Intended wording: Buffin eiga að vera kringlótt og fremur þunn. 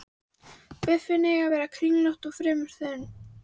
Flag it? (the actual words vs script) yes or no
no